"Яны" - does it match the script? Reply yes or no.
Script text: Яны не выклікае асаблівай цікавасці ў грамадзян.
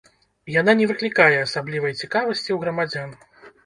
no